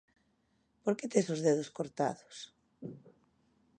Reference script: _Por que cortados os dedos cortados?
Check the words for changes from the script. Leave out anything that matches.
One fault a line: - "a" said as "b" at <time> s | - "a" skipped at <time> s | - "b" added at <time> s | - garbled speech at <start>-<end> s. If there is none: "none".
- "cortados" said as "tes" at 1.1 s